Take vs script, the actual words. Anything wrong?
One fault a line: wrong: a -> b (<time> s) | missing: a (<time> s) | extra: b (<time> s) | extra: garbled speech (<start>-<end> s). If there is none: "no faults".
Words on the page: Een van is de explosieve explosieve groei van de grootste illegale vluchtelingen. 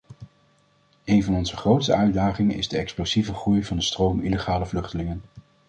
extra: onze grootste uitdagingen (1.4 s)
missing: explosieve (3.3 s)
wrong: grootste -> stroom (3.8 s)